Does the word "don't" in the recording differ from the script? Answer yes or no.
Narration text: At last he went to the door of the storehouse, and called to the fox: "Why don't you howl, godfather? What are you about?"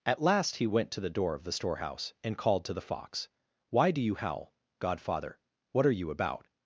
yes